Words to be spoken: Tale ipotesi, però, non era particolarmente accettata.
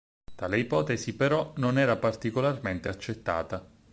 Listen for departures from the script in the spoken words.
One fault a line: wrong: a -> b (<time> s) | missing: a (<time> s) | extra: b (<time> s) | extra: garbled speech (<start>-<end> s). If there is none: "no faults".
no faults